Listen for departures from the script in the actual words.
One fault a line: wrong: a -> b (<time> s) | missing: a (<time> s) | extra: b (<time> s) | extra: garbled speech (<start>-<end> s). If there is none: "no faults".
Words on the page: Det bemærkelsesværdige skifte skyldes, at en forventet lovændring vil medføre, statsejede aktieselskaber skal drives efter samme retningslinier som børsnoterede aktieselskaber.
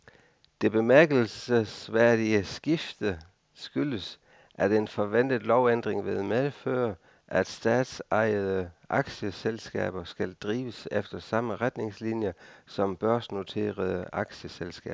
extra: at (7.3 s)